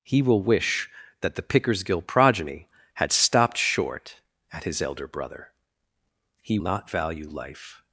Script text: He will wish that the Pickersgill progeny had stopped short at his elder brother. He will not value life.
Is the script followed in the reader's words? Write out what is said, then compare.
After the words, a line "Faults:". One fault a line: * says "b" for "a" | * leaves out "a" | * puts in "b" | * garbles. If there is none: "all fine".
He will wish that the Pickersgill progeny had stopped short at his elder brother. He not value life.
Faults:
* leaves out "will"